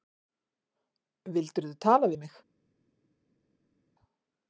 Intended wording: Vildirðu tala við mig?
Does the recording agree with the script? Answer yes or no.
yes